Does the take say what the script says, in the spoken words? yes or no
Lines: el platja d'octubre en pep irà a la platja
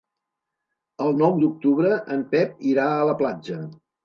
no